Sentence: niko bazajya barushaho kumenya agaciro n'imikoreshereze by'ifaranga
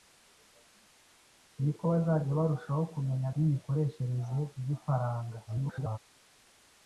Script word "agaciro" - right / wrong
wrong